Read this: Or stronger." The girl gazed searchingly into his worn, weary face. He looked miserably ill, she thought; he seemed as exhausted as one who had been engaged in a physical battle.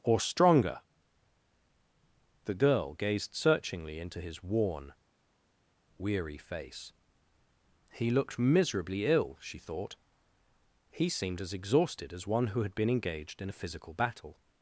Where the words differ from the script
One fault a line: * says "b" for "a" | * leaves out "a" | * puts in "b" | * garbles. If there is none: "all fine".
all fine